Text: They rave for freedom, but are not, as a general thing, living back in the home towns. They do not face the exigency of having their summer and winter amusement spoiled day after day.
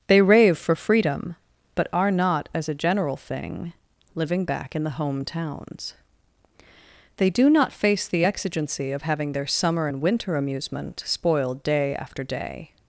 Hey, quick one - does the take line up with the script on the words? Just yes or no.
yes